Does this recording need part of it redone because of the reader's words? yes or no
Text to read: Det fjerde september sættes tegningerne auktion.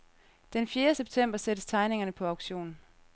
yes